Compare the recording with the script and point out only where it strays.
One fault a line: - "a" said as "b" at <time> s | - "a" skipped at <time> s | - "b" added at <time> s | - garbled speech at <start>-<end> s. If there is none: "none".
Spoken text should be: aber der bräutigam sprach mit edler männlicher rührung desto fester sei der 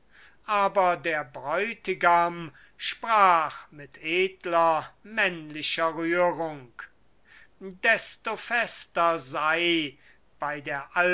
- "bei" added at 10.4 s